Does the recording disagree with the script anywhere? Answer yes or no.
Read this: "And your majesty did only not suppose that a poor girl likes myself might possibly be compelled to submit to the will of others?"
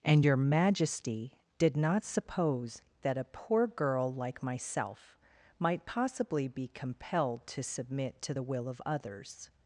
yes